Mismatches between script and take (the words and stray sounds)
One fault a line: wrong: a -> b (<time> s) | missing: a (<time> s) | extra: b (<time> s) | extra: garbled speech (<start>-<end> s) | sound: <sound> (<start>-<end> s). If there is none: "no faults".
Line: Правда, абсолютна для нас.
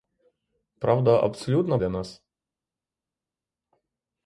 no faults